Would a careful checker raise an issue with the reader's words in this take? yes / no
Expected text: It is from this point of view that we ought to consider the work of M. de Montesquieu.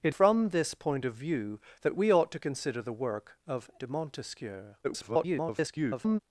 yes